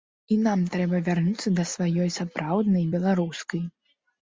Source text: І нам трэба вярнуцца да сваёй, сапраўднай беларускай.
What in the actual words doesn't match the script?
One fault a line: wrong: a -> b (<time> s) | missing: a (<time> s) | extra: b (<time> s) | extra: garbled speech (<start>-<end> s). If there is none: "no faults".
no faults